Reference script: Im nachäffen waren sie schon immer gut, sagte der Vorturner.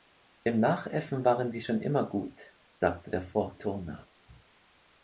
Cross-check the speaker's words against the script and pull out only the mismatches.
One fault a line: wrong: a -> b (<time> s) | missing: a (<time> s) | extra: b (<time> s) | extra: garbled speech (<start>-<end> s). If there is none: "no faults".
no faults